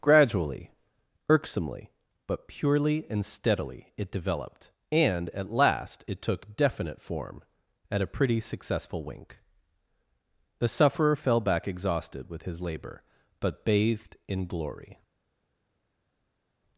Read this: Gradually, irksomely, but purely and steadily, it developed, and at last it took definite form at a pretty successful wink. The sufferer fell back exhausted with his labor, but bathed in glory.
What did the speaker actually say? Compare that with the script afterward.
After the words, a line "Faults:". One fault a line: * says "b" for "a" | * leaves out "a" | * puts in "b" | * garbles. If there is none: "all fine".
Gradually, irksomely, but purely and steadily, it developed, and at last it took definite form at a pretty successful wink. The sufferer fell back exhausted with his labor, but bathed in glory.
Faults:
all fine